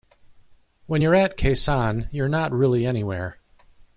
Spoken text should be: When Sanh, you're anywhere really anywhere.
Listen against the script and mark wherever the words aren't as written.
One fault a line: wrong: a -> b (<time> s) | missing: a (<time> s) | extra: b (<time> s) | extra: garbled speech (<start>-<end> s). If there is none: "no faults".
extra: you're at Khe (1.0 s)
wrong: anywhere -> not (2.3 s)